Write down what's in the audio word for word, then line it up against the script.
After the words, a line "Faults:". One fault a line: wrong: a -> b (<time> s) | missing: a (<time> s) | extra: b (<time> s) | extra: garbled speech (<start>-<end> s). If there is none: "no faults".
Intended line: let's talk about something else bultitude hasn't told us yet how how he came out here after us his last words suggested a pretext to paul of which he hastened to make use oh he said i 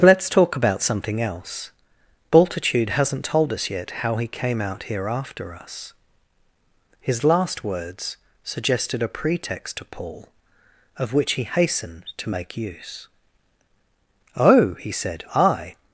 let's talk about something else bultitude hasn't told us yet how he came out here after us his last words suggested a pretext to paul of which he hastened to make use oh he said i
Faults:
missing: how (4.2 s)